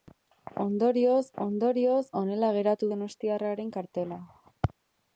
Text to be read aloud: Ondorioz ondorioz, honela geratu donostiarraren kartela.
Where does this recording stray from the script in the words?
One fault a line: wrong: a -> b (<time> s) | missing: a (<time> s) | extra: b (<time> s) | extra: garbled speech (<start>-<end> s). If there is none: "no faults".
no faults